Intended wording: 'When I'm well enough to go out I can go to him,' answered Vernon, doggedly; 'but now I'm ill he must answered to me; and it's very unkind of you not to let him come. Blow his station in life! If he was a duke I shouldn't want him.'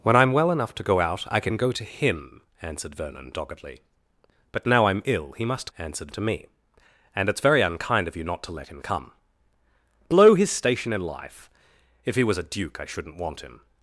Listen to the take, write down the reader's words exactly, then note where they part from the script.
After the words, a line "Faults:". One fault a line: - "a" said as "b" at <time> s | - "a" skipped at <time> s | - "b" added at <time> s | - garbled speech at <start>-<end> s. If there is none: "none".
'When I'm well enough to go out I can go to him,' answered Vernon, doggedly; 'but now I'm ill he must answered to me; and it's very unkind of you not to let him come. Blow his station in life! If he was a duke I shouldn't want him.'
Faults:
none